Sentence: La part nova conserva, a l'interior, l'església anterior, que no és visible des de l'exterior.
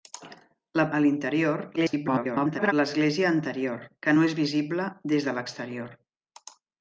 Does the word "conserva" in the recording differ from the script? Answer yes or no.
yes